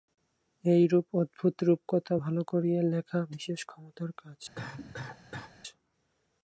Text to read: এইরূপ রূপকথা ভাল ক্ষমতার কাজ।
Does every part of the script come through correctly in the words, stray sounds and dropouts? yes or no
no